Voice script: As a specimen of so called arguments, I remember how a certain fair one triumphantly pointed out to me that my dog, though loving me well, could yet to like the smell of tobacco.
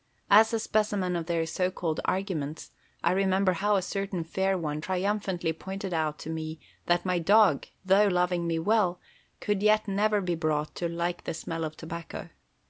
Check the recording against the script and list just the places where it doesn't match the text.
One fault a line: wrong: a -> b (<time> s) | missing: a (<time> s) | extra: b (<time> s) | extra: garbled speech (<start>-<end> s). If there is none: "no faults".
extra: their (1.3 s)
extra: never be brought (9.9 s)